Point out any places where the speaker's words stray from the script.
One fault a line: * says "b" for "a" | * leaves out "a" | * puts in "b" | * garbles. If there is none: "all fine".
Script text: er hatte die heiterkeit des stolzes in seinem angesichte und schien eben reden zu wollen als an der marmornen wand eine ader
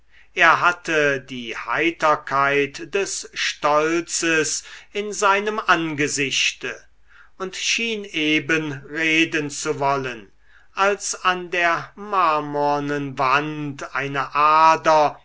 all fine